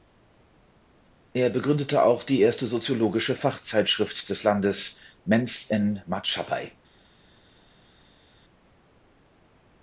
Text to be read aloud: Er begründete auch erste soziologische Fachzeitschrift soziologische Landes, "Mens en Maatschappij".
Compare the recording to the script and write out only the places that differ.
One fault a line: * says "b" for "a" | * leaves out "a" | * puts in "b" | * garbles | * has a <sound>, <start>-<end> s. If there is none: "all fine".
* puts in "die"
* says "des" for "soziologische"